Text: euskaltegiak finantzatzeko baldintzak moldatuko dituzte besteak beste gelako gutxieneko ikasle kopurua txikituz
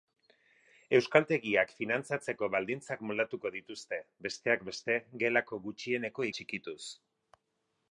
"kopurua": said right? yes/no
no